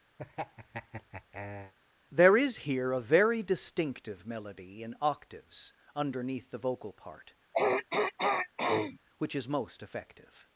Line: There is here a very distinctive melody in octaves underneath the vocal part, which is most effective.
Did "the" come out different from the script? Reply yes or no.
no